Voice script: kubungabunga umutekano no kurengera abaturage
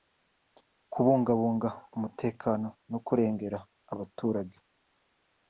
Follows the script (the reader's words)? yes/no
yes